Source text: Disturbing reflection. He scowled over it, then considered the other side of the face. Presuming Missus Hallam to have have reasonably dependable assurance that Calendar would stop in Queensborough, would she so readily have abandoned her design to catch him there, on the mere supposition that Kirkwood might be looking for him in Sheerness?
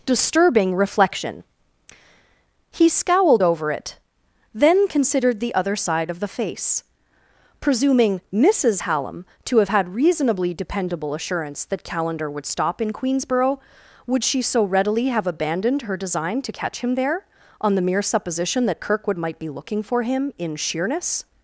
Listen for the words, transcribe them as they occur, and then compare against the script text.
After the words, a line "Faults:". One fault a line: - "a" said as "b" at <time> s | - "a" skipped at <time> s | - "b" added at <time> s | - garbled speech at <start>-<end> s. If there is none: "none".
Disturbing reflection. He scowled over it, then considered the other side of the face. Presuming Missus Hallam to have had reasonably dependable assurance that Calendar would stop in Queensborough, would she so readily have abandoned her design to catch him there, on the mere supposition that Kirkwood might be looking for him in Sheerness?
Faults:
- "have" said as "had" at 9.7 s